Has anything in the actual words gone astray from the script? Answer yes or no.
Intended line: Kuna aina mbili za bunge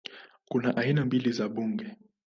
no